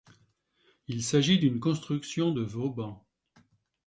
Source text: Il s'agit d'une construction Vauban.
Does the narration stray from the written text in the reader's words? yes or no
yes